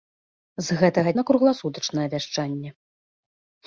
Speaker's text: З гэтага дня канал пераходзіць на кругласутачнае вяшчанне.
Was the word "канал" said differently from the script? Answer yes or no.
yes